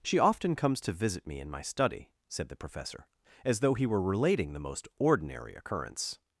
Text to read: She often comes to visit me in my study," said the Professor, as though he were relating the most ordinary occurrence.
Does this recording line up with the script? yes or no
yes